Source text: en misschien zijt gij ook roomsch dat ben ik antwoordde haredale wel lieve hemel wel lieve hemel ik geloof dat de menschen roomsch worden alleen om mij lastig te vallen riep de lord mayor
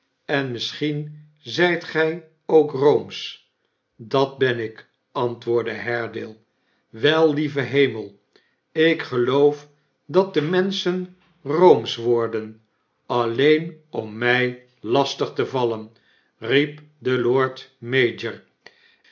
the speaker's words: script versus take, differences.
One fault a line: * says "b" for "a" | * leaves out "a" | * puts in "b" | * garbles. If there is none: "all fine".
* leaves out "wel lieve hemel"